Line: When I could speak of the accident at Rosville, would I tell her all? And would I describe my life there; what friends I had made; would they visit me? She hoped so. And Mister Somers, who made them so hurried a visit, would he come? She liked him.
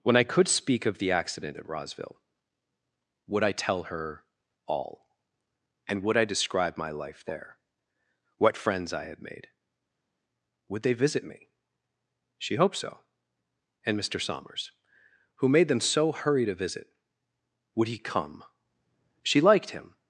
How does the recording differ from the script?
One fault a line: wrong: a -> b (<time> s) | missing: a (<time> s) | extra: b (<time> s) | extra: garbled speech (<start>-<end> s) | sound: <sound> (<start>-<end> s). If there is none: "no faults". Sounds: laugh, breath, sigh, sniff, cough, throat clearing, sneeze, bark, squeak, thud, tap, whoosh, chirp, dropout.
no faults